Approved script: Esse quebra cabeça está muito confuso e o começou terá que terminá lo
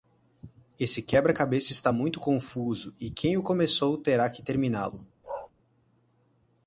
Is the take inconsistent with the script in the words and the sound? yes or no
yes